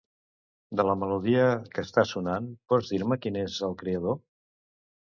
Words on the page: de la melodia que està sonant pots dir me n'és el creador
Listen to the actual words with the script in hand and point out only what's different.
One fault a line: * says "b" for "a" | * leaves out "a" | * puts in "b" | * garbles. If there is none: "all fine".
* puts in "qui"